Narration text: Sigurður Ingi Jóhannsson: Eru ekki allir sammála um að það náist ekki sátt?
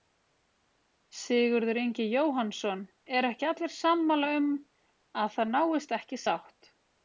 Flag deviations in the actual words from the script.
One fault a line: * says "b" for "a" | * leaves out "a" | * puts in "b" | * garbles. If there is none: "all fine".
all fine